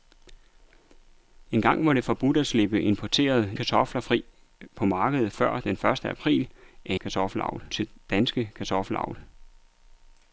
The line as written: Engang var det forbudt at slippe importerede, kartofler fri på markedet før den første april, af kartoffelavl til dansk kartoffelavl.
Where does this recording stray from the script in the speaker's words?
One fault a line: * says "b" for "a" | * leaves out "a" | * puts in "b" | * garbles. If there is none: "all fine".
all fine